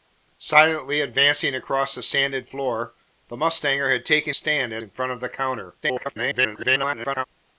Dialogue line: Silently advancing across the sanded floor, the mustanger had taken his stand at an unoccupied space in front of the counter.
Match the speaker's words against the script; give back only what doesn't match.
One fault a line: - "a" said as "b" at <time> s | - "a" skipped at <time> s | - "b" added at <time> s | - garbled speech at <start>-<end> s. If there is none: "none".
- "his" skipped at 4.3 s
- "an unoccupied space" skipped at 4.8 s
- garbled speech at 5.8-7.2 s